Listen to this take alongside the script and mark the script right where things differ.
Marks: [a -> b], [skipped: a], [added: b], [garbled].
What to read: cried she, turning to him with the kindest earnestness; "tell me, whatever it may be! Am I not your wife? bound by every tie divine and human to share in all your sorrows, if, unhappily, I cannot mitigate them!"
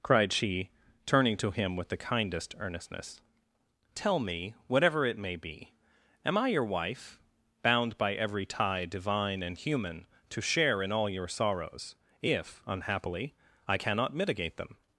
cried she, turning to him with the kindest earnestness; "tell me, whatever it may be! Am I [skipped: not] your wife? bound by every tie divine and human to share in all your sorrows, if, unhappily, I cannot mitigate them!"